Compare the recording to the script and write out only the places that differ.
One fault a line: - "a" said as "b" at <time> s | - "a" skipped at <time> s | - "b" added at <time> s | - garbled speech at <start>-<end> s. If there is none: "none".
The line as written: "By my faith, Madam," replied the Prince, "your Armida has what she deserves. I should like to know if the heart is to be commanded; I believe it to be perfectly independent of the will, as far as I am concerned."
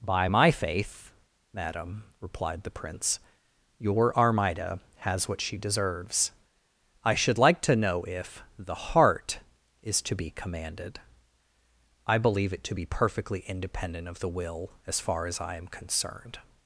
none